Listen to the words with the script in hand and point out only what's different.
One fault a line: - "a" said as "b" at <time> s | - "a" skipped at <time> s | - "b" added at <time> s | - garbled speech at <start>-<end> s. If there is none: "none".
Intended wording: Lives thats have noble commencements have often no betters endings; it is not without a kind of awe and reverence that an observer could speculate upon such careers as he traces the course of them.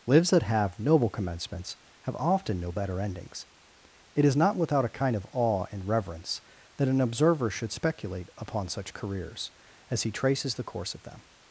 - "thats" said as "that" at 0.3 s
- "betters" said as "better" at 2.7 s
- "could" said as "should" at 7.5 s